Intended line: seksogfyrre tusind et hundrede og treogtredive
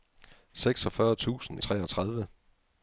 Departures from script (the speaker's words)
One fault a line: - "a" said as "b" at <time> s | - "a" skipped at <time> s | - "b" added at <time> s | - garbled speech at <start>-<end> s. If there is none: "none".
- "et hundrede" skipped at 1.6 s